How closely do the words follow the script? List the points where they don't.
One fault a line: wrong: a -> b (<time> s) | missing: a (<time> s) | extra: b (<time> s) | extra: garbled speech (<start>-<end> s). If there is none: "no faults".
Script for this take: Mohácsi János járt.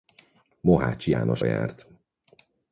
no faults